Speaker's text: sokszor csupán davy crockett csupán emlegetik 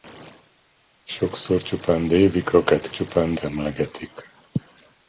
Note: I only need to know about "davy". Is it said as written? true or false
true